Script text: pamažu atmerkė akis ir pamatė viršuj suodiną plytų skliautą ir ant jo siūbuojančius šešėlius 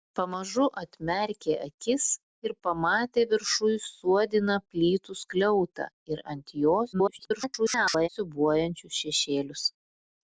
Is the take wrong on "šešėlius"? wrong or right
right